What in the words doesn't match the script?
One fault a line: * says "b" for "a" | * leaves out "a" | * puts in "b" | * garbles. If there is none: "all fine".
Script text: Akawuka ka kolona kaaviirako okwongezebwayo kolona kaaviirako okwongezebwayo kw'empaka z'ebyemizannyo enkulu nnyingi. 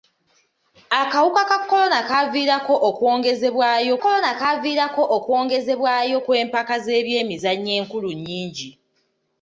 all fine